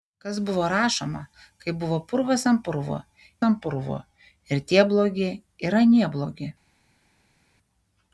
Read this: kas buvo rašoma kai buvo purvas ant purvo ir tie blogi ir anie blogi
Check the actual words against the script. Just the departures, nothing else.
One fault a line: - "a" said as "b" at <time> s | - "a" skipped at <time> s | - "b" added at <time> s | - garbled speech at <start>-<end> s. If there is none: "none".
- "ant purvo" added at 3.5 s